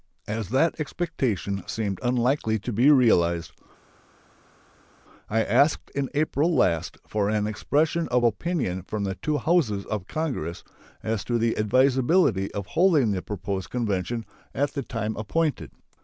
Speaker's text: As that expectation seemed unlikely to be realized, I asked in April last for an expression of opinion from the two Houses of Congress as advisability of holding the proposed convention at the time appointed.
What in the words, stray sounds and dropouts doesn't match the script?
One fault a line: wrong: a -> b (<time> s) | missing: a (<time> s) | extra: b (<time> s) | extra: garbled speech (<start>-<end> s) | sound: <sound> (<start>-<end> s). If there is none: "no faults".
extra: to the (11.3 s)